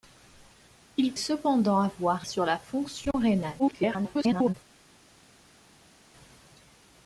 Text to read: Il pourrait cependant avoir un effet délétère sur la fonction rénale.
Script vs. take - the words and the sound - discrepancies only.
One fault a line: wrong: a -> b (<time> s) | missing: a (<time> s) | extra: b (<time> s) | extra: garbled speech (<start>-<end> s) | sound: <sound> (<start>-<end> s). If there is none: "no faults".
missing: pourrait (1.1 s)
missing: un effet délétère (2.3 s)
extra: garbled speech (3.6-4.5 s)